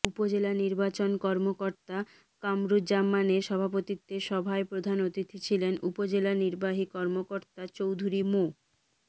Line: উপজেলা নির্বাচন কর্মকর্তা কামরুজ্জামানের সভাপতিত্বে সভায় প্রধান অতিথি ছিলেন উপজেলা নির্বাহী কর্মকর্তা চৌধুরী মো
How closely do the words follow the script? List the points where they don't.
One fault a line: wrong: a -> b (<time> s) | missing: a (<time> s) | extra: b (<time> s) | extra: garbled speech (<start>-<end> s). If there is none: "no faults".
no faults